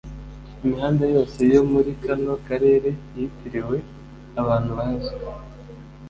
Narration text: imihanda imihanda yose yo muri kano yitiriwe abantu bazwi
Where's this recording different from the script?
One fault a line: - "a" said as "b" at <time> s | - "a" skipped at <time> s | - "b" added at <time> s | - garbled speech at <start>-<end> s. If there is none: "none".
- "imihanda" skipped at 1.0 s
- "karere" added at 2.5 s